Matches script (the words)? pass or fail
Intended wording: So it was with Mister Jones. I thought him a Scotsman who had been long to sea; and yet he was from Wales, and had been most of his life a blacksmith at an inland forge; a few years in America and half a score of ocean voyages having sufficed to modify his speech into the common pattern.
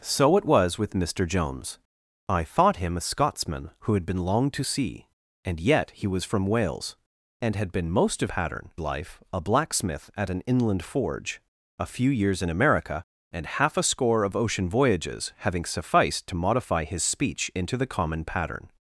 fail